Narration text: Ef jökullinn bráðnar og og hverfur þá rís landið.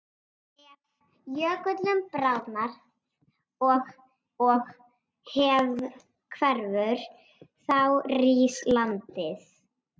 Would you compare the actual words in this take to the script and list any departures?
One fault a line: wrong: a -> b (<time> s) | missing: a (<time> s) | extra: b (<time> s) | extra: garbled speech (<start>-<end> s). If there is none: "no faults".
no faults